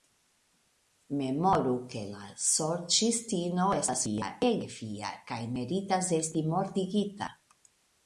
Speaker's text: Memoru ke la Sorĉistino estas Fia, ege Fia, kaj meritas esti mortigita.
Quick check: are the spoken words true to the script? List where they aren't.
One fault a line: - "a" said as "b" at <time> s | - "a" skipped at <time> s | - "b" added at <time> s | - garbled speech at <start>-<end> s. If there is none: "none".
none